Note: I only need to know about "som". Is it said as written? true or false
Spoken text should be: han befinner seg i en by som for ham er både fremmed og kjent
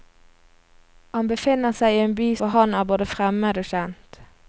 false